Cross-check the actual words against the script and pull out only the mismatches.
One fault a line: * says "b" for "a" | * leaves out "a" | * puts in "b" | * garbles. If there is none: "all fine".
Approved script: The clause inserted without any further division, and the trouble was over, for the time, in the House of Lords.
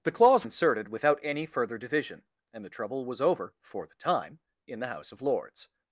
all fine